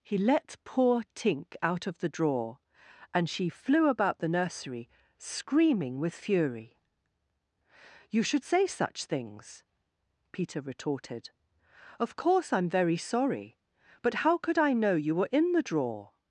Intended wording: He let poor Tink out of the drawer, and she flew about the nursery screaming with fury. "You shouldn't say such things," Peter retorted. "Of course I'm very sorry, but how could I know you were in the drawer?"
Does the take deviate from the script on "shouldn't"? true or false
true